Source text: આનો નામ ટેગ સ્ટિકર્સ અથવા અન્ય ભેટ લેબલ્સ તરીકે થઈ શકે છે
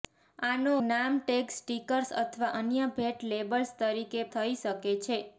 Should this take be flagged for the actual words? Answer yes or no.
no